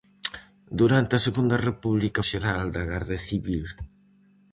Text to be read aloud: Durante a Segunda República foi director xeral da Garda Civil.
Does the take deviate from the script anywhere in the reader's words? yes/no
yes